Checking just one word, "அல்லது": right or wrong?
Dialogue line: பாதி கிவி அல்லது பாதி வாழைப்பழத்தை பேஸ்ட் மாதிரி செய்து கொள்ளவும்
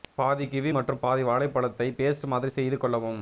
wrong